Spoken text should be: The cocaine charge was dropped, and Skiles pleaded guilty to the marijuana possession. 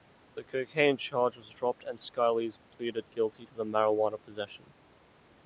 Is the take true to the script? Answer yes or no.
yes